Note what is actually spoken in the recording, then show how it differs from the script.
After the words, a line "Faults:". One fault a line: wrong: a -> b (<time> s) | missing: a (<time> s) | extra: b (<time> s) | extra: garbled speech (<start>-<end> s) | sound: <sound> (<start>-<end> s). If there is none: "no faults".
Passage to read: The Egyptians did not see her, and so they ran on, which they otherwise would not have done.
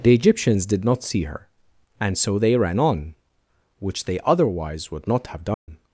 The Egyptians did not see her, and so they ran on, which they otherwise would not have done.
Faults:
sound: dropout (5.5-5.7 s)